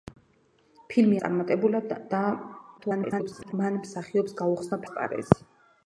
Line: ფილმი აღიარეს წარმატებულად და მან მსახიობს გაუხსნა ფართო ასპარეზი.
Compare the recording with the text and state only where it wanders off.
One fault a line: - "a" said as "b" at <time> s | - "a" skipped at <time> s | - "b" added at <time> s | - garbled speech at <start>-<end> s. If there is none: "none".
- "აღიარეს" skipped at 1.2 s
- garbled speech at 2.8-3.5 s
- "ფართო" skipped at 4.8 s